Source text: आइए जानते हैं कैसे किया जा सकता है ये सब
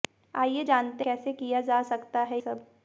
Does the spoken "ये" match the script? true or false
false